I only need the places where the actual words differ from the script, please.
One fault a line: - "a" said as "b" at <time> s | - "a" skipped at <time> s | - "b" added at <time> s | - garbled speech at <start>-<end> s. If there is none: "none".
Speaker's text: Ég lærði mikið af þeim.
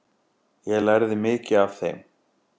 none